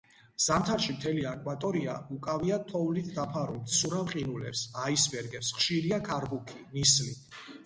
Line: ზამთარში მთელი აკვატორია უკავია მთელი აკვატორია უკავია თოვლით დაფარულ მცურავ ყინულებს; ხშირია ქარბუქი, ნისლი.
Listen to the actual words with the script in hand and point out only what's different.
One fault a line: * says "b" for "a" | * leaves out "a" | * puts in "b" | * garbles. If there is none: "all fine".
* leaves out "მთელი აკვატორია უკავია"
* puts in "აისბერგებს"